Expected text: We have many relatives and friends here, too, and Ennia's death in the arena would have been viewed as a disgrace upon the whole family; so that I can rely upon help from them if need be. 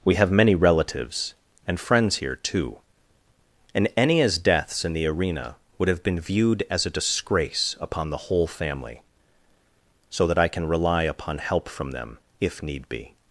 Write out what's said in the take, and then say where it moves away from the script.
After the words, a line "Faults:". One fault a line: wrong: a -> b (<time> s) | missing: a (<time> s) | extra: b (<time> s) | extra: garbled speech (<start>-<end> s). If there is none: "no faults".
We have many relatives and friends here, too, and Ennia's deaths in the arena would have been viewed as a disgrace upon the whole family; so that I can rely upon help from them if need be.
Faults:
wrong: death -> deaths (4.4 s)